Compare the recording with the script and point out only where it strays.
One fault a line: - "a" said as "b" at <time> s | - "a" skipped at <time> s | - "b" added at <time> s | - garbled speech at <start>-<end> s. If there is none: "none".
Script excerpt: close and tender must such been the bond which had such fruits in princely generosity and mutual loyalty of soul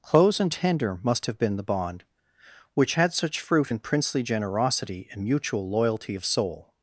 - "such" said as "have" at 1.3 s
- "fruits" said as "fruit" at 3.4 s